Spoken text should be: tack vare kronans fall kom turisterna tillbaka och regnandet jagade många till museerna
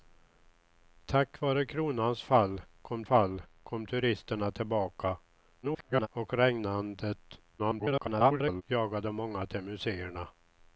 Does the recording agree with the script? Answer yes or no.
no